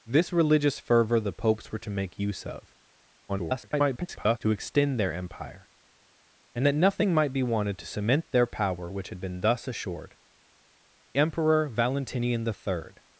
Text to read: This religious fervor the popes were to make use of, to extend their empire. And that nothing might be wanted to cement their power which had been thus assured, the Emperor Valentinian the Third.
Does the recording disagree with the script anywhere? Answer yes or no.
yes